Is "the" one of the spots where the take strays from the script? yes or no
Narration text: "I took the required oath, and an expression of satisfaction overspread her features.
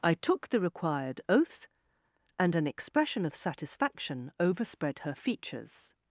no